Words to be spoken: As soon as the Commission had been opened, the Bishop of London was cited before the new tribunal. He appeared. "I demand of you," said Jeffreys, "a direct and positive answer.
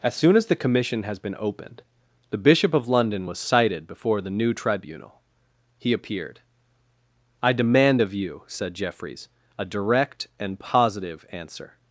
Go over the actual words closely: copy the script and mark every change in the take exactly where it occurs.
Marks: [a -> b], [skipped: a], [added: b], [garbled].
As soon as the Commission [had -> has] been opened, the Bishop of London was cited before the new tribunal. He appeared. "I demand of you," said Jeffreys, "a direct and positive answer.